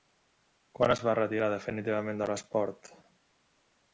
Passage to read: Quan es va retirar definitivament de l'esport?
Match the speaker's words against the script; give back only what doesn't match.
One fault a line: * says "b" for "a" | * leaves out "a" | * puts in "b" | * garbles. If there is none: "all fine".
all fine